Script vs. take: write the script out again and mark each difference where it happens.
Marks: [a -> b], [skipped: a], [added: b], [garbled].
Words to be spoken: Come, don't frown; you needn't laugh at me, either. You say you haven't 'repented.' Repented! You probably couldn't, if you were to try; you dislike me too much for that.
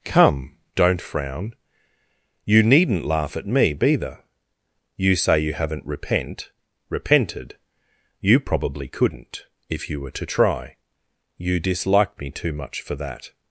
Come, don't frown; you needn't laugh at me, either. You say you haven't ['repented.' -> repent] Repented! You probably couldn't, if you were to try; you dislike me too much for that.